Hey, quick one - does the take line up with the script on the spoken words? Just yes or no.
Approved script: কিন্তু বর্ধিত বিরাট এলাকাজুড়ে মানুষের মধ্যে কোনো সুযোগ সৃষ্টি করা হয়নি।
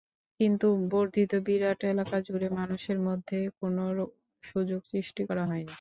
yes